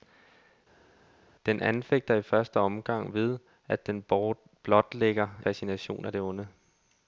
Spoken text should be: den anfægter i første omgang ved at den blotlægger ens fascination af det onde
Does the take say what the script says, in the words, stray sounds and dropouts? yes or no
no